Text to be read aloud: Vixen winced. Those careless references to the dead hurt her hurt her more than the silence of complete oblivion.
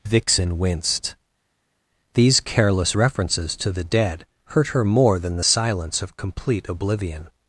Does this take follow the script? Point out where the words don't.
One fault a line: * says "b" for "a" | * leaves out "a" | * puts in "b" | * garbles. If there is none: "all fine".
* says "These" for "Those"
* leaves out "hurt her"